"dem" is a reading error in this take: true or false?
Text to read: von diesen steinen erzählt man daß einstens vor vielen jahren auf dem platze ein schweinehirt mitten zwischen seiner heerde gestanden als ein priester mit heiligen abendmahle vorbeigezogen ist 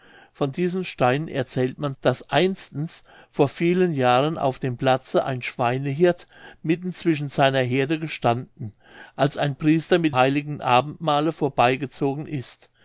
false